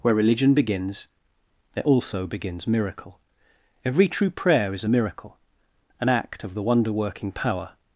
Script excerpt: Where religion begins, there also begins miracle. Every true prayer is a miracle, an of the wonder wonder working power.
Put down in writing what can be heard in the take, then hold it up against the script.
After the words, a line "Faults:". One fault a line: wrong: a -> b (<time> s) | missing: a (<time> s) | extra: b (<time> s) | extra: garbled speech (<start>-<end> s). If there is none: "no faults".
Where religion begins, there also begins miracle. Every true prayer is a miracle, an act of the wonder working power.
Faults:
extra: act (6.1 s)
missing: wonder (6.9 s)